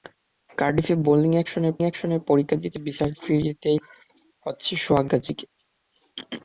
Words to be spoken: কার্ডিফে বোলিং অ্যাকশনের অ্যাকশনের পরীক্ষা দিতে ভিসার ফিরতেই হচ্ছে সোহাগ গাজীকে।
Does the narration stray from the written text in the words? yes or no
no